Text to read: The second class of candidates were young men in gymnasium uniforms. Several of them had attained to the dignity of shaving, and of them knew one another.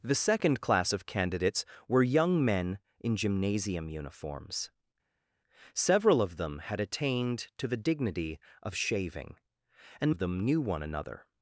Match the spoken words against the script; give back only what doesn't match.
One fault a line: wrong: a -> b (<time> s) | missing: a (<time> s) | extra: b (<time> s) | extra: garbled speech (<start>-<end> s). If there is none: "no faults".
no faults